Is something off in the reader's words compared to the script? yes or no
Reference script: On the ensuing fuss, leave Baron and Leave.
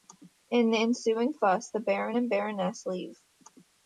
yes